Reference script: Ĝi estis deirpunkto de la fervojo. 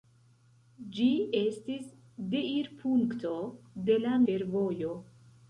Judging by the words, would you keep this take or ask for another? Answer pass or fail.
pass